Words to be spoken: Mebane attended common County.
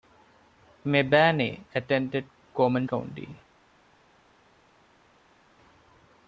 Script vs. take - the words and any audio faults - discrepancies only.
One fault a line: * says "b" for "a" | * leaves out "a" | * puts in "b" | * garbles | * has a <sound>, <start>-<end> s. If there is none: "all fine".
all fine